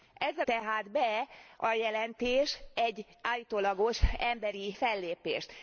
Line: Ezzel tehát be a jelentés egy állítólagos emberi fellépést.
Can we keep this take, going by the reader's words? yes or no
yes